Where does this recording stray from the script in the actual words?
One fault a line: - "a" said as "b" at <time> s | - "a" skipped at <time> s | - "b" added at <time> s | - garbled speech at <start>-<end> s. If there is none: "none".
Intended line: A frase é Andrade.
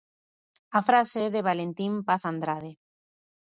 - "de Valentín Paz" added at 1.3 s